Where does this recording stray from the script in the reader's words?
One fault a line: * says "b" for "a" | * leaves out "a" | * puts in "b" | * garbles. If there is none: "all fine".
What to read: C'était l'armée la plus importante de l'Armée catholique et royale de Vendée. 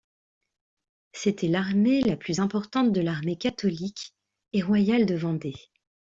all fine